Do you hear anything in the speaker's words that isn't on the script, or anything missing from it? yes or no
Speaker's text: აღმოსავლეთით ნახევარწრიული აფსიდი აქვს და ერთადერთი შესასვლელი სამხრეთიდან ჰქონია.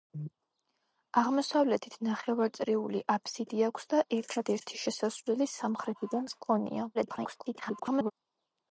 yes